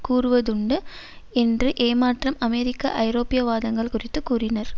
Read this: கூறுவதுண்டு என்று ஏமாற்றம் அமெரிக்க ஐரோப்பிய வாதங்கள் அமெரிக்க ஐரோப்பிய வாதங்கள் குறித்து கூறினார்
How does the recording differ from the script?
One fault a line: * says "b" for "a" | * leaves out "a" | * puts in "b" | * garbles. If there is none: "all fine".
* leaves out "அமெரிக்க ஐரோப்பிய வாதங்கள்"